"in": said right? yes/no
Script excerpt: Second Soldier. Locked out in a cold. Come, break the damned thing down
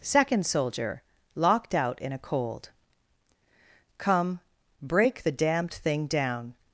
yes